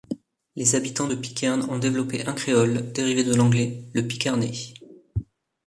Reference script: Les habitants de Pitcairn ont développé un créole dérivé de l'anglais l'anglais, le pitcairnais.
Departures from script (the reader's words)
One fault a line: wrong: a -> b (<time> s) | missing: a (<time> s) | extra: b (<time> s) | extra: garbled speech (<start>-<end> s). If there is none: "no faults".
missing: l'anglais (3.8 s)